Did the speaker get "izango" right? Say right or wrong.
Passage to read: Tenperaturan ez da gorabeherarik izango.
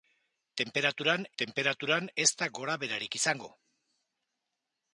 right